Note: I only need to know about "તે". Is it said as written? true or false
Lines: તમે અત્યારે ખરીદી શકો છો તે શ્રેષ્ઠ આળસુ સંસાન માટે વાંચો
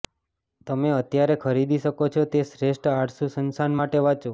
true